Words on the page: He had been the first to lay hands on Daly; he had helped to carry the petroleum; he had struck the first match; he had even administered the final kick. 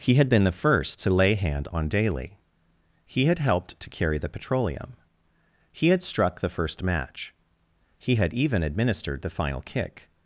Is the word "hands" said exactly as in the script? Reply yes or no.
no